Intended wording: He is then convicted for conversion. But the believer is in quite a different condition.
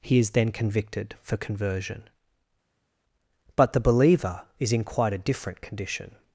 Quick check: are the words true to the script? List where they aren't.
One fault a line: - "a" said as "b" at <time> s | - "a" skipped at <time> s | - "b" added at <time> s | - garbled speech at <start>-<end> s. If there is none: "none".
none